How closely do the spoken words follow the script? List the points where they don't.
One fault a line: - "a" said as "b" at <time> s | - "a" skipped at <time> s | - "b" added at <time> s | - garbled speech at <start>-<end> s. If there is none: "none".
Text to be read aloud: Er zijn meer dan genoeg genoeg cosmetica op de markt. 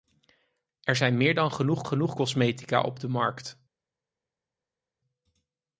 none